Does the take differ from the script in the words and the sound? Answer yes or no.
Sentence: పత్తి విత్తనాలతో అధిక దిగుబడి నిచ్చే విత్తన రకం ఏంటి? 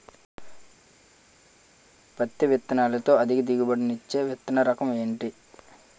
no